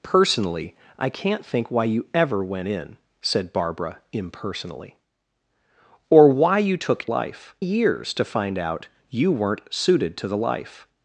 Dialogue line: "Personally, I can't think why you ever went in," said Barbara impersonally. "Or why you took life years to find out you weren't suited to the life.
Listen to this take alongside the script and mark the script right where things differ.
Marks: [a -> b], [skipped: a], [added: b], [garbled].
"Personally, I can't think why you ever went in," said Barbara impersonally. "Or why you took life years to find out you weren't suited to the life.